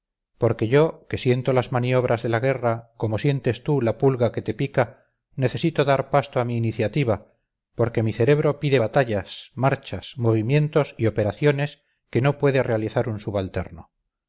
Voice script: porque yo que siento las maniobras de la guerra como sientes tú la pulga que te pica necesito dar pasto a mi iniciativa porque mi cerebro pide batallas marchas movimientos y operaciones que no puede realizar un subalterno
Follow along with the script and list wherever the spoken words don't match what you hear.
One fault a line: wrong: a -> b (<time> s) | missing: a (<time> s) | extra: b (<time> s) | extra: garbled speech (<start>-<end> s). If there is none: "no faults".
no faults